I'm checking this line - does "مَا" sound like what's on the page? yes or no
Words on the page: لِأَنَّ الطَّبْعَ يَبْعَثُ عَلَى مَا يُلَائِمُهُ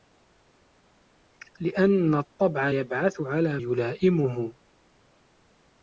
no